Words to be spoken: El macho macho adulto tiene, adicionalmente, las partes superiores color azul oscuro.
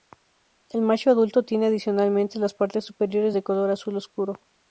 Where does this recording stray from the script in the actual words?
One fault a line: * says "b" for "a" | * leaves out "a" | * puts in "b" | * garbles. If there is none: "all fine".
* leaves out "macho"
* puts in "de"